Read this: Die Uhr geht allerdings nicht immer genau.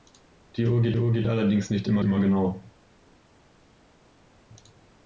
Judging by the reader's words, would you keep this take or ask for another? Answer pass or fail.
fail